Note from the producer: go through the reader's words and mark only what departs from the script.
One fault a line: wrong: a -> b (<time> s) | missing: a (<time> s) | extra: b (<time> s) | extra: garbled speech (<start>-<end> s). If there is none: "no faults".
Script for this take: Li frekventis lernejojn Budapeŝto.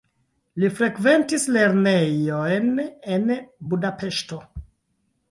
extra: en (3.2 s)